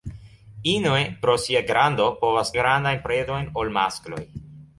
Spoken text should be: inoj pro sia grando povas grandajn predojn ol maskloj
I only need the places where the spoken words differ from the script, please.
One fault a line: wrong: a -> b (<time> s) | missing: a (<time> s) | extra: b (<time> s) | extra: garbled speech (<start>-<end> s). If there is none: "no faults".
no faults